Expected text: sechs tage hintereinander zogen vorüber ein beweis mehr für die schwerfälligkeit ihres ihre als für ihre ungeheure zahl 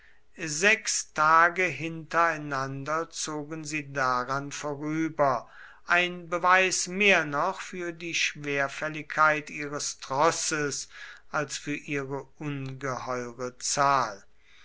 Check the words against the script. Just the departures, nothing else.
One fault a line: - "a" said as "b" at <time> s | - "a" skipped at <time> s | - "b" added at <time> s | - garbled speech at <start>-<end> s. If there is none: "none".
- "sie daran" added at 3.6 s
- "noch" added at 7.2 s
- "ihre" said as "trosses" at 10.0 s